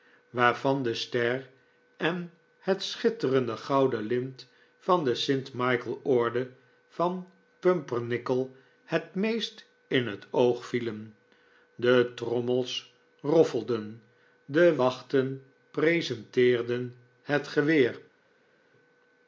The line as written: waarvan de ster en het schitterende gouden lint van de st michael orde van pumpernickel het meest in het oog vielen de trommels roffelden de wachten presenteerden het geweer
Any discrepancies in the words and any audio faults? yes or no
no